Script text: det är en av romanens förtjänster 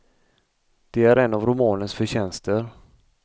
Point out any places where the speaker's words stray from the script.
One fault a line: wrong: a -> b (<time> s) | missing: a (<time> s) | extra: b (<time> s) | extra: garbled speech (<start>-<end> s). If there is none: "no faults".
no faults